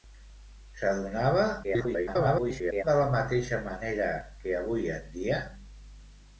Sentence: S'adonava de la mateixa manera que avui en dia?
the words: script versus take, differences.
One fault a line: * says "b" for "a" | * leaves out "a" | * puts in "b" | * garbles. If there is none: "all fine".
* garbles